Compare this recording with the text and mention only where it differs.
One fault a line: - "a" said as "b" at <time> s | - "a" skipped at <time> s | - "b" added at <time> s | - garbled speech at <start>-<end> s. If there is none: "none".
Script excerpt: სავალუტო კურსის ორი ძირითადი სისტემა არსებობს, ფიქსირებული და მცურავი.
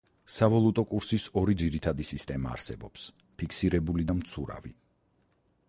none